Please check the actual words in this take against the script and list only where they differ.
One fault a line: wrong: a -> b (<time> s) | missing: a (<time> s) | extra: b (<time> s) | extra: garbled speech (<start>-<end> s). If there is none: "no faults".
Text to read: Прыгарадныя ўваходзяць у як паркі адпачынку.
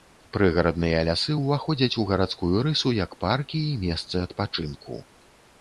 extra: лясы (1.1 s)
extra: гарадскую рысу (2.1 s)
extra: і месцы (3.7 s)